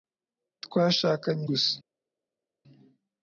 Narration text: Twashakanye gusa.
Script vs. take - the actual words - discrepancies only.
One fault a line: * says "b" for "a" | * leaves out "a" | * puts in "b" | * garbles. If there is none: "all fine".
all fine